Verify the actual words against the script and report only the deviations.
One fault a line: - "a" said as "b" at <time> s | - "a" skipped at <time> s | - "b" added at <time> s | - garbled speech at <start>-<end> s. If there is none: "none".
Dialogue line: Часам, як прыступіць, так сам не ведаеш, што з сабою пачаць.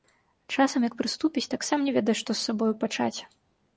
none